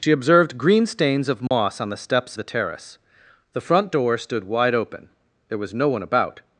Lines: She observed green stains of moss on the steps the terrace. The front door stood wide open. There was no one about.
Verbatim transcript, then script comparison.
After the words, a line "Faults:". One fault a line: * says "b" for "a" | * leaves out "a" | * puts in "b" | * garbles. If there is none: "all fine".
She observed green stains of moss on the steps the terrace. The front door stood wide open. There was no one about.
Faults:
all fine